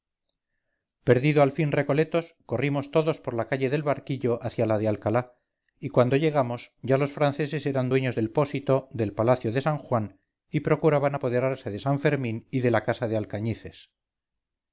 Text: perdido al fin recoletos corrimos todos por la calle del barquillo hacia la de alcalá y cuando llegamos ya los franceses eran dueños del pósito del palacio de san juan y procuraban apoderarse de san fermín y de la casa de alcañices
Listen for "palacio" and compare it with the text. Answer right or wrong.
right